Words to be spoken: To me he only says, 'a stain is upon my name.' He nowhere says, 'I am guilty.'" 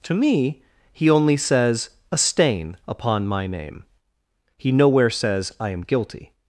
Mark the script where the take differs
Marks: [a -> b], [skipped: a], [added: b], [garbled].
To me he only says, 'a stain [skipped: is] upon my name.' He nowhere says, 'I am guilty.'"